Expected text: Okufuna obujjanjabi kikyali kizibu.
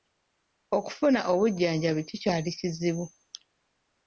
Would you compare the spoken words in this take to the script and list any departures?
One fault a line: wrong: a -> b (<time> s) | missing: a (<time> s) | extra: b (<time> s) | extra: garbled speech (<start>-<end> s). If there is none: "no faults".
no faults